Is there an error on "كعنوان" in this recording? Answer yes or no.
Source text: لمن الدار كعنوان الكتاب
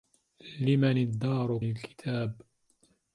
yes